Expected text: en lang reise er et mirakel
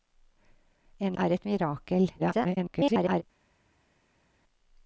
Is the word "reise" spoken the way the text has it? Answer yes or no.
no